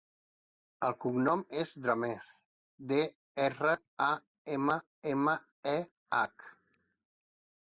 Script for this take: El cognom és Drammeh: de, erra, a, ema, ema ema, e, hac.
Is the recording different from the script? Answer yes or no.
yes